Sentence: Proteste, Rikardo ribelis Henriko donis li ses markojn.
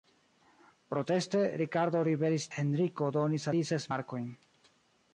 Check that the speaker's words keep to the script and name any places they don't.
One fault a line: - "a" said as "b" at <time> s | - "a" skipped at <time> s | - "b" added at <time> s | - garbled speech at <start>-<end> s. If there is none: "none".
none